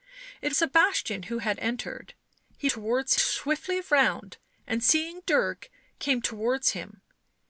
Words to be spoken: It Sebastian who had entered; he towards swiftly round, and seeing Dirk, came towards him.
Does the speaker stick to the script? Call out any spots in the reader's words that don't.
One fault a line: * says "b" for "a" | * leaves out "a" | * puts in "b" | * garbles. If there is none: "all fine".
all fine